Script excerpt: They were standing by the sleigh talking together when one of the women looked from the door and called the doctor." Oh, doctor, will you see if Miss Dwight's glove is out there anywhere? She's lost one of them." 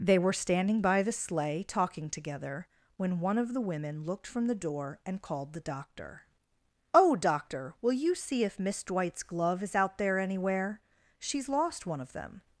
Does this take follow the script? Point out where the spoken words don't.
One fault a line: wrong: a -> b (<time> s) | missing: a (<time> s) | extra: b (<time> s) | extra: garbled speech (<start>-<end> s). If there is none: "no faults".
no faults